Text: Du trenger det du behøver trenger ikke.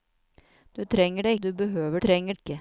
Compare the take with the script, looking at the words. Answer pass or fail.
pass